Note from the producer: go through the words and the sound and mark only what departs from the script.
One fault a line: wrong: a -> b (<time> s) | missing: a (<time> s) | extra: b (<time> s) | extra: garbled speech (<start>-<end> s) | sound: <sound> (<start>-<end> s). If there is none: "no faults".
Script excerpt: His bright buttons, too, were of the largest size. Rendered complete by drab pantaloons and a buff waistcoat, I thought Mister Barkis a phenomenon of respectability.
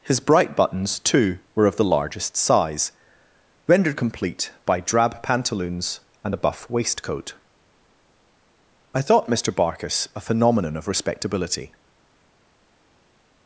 no faults